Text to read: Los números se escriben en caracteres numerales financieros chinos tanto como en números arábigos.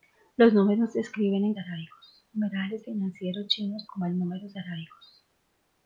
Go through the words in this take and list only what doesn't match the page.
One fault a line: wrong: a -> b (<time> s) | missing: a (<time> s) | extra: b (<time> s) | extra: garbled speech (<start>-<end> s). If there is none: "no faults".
wrong: caracteres -> arábigos (1.6 s)
missing: tanto (3.9 s)